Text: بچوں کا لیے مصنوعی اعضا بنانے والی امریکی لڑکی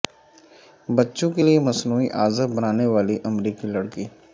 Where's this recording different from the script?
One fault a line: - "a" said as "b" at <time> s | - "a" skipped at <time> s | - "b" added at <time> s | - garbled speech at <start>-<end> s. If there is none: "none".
- "کا" said as "کے" at 1.3 s